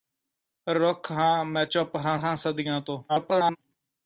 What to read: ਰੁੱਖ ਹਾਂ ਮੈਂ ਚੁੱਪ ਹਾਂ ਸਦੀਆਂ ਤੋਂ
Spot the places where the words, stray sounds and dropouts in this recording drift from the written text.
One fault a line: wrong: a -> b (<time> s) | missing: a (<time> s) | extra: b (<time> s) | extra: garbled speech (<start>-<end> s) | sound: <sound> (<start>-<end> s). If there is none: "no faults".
extra: ਹਾਂ (2.2 s)
extra: garbled speech (3.1-3.6 s)